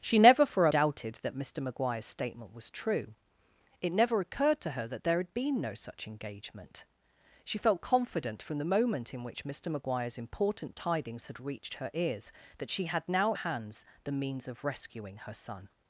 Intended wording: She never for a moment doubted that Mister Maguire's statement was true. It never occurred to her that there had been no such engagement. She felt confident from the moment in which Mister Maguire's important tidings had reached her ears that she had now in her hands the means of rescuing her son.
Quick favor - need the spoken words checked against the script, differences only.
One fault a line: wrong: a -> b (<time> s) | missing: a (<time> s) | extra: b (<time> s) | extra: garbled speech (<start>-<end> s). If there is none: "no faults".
missing: moment (0.7 s)
missing: in her (13.3 s)